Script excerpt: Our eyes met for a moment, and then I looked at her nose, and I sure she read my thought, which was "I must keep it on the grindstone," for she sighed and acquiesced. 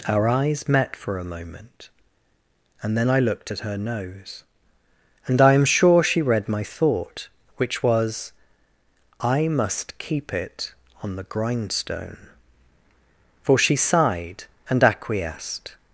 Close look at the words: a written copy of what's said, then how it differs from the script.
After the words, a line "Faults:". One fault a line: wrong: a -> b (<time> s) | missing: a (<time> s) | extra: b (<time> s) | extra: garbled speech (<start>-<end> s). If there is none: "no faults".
Our eyes met for a moment, and then I looked at her nose, and I am sure she read my thought, which was "I must keep it on the grindstone," for she sighed and acquiesced.
Faults:
extra: am (5.5 s)